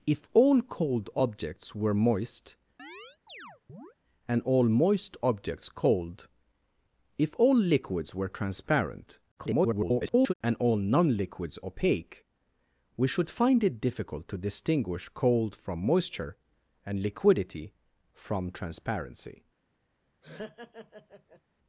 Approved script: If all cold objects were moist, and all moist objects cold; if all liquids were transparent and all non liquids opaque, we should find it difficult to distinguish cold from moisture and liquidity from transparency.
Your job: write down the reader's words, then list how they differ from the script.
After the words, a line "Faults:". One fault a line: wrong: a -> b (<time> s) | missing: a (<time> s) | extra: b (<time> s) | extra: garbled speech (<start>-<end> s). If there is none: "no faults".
If all cold objects were moist, and all moist objects cold; if all liquids were transparent [garbled] and all non liquids opaque, we should find it difficult to distinguish cold from moisture and liquidity from transparency.
Faults:
extra: garbled speech (9.4-10.3 s)